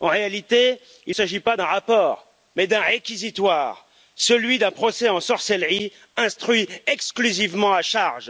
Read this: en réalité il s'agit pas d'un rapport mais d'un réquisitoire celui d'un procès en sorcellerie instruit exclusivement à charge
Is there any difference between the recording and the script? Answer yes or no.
no